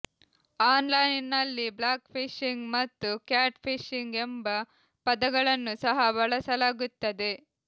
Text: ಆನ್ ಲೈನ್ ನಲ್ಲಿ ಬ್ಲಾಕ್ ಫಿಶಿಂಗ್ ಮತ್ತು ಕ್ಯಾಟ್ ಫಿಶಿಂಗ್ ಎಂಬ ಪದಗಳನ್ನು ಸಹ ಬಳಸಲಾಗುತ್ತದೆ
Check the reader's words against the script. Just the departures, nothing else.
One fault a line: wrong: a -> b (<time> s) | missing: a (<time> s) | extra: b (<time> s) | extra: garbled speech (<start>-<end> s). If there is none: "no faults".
no faults